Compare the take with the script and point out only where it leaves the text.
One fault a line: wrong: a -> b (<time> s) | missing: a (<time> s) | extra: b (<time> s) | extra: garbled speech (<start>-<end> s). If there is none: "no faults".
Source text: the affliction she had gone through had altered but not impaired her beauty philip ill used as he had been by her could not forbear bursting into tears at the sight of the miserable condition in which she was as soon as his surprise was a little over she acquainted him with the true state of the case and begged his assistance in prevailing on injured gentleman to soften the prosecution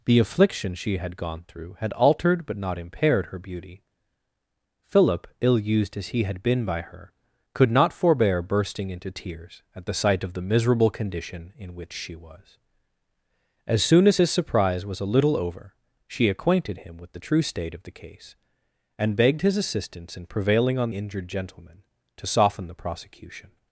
no faults